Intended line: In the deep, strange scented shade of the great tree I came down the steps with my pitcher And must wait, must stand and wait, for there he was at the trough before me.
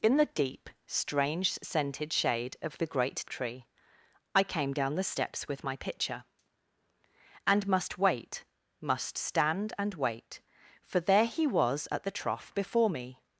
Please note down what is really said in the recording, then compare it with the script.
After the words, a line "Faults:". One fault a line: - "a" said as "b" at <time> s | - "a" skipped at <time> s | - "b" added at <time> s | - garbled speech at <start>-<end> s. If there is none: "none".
In the deep, strange scented shade of the great tree I came down the steps with my pitcher And must wait, must stand and wait, for there he was at the trough before me.
Faults:
none